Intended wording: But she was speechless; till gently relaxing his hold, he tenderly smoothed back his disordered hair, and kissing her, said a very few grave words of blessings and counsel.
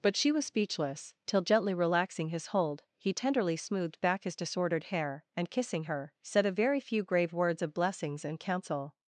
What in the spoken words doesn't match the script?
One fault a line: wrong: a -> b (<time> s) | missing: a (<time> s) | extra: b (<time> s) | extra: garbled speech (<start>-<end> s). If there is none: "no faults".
no faults